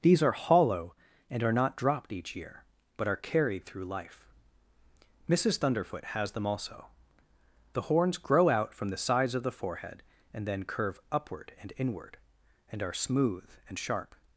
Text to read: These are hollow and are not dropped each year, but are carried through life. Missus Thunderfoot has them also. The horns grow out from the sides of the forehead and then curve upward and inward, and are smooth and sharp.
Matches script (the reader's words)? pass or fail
pass